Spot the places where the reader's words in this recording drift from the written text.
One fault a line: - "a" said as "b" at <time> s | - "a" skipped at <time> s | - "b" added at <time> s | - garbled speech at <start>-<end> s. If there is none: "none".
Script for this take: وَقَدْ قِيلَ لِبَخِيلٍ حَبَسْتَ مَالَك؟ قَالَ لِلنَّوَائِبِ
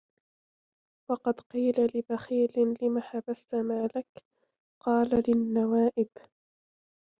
- "لِمَ" added at 2.8 s